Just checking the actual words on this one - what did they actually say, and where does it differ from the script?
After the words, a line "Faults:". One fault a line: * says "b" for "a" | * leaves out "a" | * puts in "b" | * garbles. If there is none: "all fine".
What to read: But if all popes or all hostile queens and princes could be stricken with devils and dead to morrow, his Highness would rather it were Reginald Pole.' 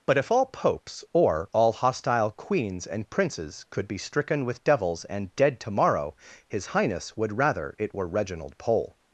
But if all popes or all hostile queens and princes could be stricken with devils and dead to morrow, his Highness would rather it were Reginald Pole.'
Faults:
all fine